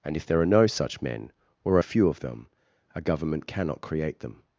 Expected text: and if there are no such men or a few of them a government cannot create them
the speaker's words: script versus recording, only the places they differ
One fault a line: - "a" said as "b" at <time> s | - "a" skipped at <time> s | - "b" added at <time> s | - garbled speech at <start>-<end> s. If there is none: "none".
none